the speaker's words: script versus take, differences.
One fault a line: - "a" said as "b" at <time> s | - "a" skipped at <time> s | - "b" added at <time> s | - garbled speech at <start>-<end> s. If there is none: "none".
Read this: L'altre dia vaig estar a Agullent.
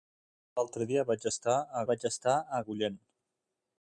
- "vaig estar a" added at 1.9 s